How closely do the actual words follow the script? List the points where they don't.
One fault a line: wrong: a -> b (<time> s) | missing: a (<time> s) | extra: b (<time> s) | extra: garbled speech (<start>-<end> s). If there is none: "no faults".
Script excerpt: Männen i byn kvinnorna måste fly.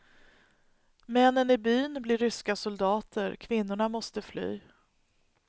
extra: blir ryska soldater (2.0 s)